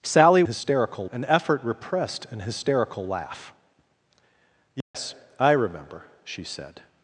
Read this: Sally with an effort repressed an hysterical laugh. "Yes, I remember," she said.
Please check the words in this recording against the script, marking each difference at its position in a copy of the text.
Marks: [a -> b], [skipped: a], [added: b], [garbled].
Sally [with -> hysterical] an effort repressed an hysterical laugh. "Yes, I remember," she said.